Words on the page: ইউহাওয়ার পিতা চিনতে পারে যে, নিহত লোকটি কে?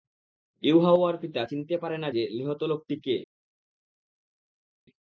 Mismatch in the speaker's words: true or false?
true